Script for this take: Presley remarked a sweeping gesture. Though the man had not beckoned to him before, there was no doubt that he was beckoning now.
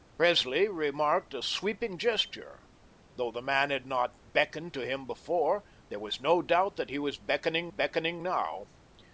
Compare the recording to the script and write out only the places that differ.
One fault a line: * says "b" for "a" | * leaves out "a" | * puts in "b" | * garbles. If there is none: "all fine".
* puts in "beckoning"